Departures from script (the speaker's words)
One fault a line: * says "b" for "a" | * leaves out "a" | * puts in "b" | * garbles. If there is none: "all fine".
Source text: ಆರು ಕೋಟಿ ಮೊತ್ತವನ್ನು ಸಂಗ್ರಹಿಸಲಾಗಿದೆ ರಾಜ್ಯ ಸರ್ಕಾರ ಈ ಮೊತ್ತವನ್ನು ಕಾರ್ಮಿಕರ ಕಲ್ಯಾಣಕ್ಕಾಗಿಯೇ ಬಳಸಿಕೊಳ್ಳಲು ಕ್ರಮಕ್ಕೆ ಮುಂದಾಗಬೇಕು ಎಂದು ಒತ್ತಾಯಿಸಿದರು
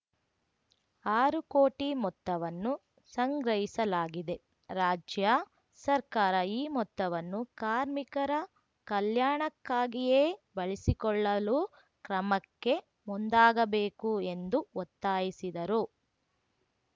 all fine